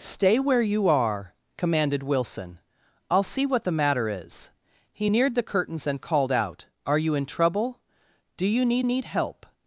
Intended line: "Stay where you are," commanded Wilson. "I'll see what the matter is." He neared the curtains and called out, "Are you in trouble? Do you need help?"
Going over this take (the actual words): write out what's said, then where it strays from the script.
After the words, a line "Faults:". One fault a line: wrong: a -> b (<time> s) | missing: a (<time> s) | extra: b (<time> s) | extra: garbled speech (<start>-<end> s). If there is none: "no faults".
"Stay where you are," commanded Wilson. "I'll see what the matter is." He neared the curtains and called out, "Are you in trouble? Do you need need help?"
Faults:
extra: need (8.8 s)